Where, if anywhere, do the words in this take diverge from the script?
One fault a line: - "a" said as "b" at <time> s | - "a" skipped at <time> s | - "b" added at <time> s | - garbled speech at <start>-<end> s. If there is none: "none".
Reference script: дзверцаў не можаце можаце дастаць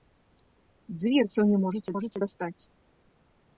none